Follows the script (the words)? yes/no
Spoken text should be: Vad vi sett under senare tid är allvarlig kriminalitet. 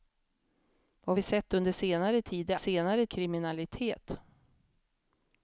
no